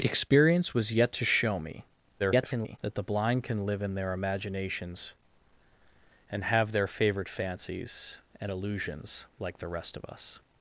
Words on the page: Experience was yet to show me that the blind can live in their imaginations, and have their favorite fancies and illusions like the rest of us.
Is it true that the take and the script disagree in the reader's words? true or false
true